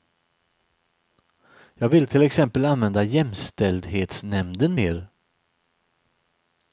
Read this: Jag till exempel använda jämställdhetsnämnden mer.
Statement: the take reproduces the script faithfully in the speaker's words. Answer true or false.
false